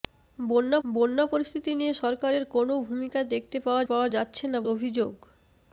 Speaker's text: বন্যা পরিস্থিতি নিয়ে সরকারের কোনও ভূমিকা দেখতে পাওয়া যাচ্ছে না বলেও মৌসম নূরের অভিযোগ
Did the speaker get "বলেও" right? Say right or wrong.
wrong